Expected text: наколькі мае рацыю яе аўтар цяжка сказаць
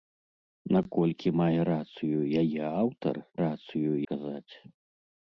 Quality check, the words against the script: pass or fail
fail